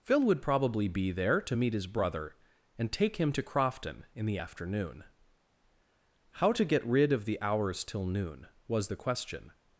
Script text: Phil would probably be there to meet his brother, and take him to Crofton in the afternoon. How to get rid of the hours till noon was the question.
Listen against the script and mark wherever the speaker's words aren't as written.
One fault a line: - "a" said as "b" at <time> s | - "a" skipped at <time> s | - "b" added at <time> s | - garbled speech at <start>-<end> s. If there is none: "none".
none